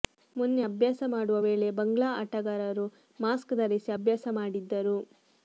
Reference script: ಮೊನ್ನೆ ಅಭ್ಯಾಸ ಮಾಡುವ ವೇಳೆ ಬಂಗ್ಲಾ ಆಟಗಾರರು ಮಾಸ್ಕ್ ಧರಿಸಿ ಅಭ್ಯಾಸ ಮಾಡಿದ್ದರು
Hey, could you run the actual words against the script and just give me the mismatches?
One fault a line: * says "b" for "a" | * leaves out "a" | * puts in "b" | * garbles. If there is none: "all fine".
all fine